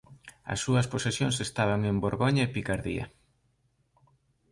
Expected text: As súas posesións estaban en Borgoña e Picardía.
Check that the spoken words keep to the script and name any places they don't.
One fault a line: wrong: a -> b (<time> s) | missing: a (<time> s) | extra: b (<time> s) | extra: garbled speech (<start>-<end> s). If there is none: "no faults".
no faults